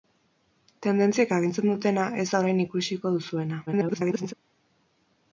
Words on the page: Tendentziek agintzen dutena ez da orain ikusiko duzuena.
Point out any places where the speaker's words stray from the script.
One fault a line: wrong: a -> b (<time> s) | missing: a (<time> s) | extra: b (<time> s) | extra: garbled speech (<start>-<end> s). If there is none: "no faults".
extra: garbled speech (3.7-4.3 s)